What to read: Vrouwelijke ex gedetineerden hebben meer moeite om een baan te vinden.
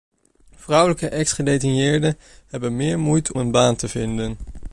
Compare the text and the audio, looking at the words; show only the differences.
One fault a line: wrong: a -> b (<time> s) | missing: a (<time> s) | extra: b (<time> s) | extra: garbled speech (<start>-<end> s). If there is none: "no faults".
missing: om (3.3 s)